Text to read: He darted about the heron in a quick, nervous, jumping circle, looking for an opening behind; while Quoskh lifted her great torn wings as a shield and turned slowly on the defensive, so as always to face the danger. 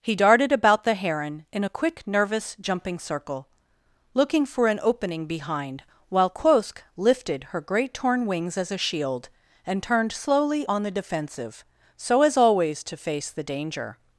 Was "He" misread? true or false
false